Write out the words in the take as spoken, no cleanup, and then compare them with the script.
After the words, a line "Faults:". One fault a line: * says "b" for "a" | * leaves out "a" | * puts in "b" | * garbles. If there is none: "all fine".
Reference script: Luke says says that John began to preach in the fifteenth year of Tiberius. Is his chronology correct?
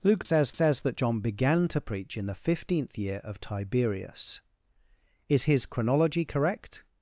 Luke says says that John began to preach in the fifteenth year of Tiberius. Is his chronology correct?
Faults:
all fine